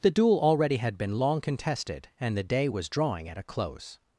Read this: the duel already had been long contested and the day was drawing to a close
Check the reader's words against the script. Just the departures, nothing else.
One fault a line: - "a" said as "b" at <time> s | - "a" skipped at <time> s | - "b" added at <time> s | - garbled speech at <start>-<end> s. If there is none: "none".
- "to" said as "at" at 3.3 s